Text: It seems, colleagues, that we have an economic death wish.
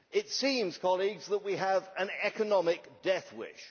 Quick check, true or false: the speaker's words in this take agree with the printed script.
true